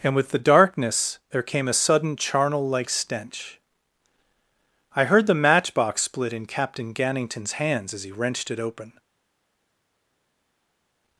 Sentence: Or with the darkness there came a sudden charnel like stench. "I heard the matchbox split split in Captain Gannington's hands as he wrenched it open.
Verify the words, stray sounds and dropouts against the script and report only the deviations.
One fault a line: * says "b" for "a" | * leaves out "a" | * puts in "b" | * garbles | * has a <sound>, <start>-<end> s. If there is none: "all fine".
* says "And" for "Or"
* leaves out "split"